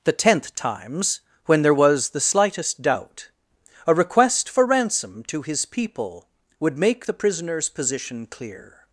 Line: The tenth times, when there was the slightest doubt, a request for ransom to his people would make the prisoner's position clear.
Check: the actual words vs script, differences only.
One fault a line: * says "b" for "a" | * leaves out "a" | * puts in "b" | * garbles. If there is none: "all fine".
all fine